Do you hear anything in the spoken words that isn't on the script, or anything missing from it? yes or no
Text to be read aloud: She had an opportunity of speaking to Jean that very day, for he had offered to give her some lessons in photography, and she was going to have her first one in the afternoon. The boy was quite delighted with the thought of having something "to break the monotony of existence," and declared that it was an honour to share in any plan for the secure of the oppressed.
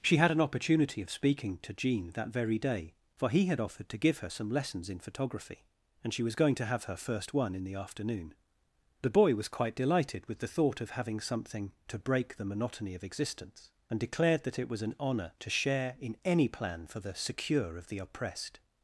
no